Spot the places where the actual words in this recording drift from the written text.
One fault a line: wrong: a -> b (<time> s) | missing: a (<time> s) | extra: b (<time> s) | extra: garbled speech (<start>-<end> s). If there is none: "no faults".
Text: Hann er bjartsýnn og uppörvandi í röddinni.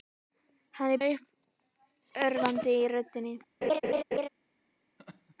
missing: bjartsýnn (1.0 s)